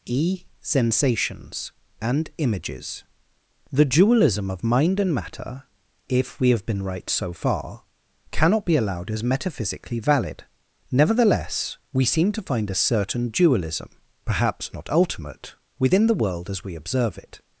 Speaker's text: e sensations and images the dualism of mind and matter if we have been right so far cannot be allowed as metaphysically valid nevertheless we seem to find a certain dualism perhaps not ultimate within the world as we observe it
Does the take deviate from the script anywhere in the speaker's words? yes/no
no